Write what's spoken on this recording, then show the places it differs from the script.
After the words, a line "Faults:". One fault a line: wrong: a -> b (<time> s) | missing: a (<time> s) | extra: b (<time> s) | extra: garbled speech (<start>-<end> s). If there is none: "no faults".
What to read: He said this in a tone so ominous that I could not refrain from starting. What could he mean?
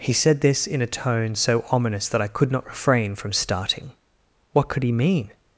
He said this in a tone so ominous that I could not refrain from starting. What could he mean?
Faults:
no faults